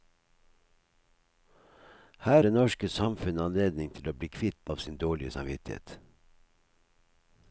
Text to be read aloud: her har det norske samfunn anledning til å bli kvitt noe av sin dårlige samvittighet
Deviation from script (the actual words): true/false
true